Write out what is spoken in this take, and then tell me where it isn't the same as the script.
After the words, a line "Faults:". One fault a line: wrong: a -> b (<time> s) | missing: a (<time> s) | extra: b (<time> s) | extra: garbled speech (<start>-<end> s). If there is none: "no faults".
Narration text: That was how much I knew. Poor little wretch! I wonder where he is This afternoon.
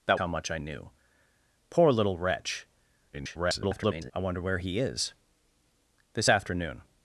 That how much I knew. Poor little wretch! [garbled] I wonder where he is This afternoon.
Faults:
missing: was (0.2 s)
extra: garbled speech (3.1-4.1 s)